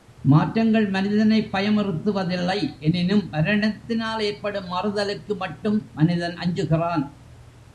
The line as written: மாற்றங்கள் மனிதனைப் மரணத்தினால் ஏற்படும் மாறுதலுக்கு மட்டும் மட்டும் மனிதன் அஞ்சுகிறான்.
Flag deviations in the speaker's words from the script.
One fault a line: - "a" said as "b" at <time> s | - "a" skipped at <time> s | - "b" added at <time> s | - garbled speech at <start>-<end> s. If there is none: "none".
- "பயமுறுத்துவதில்லை எனினும்" added at 1.5 s
- "மட்டும்" skipped at 5.9 s